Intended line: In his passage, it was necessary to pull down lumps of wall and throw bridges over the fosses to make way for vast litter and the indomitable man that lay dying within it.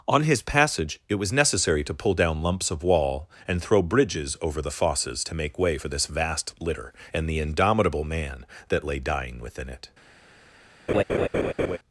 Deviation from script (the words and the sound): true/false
true